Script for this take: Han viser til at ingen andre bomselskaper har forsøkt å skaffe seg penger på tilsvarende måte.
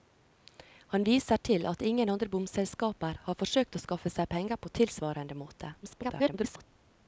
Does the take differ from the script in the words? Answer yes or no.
yes